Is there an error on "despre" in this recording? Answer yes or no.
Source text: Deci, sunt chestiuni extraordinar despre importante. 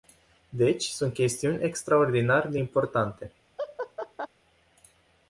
yes